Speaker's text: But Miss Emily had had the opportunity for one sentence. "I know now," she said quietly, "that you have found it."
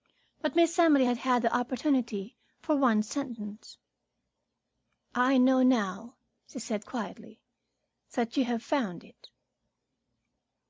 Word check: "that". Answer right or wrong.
right